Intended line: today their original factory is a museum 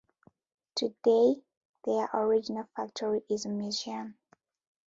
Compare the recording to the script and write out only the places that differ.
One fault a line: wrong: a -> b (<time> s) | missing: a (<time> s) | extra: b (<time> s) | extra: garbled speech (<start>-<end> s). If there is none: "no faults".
no faults